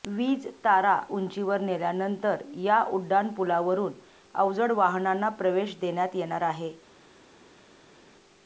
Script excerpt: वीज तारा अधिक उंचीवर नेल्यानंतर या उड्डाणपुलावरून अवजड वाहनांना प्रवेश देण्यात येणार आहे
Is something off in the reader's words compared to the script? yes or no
yes